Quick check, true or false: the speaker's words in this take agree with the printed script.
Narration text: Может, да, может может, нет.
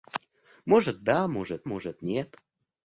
true